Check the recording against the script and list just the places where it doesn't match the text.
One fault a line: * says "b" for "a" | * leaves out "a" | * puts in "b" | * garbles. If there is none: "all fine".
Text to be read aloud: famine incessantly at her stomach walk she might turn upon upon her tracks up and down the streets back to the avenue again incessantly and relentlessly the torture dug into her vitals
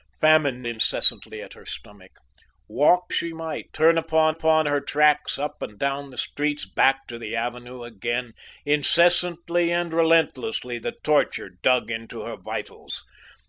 all fine